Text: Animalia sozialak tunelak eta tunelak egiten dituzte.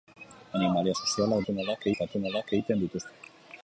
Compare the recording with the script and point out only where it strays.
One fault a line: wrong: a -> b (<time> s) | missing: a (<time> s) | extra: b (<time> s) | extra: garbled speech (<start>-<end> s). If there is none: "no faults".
no faults